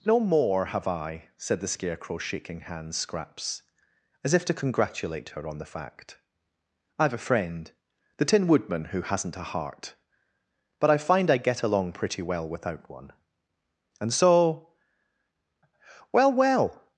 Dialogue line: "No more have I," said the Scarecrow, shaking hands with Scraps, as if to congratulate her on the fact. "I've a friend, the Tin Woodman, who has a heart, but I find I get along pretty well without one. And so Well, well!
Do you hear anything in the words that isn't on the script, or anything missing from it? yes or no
yes